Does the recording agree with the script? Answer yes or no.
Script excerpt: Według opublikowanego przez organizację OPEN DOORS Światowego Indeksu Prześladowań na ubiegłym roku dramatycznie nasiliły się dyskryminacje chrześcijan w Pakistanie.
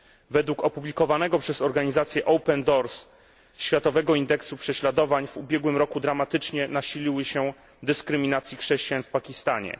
no